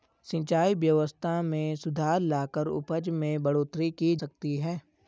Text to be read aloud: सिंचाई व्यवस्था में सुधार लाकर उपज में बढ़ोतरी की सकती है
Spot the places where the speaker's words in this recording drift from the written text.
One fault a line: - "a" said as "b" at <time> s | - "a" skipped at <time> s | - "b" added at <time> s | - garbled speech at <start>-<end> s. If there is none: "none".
none